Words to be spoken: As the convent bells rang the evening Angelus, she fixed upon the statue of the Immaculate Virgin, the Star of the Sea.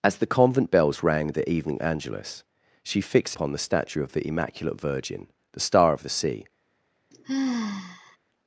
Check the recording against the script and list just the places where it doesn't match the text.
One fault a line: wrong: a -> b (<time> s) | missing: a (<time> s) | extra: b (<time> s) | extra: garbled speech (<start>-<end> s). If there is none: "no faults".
no faults